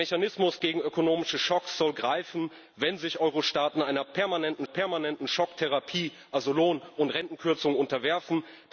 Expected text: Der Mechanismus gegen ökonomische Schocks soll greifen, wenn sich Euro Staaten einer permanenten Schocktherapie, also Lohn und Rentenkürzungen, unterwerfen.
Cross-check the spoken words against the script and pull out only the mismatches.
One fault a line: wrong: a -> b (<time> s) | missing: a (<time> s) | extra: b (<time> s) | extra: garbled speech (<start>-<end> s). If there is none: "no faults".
extra: permanenten (4.6 s)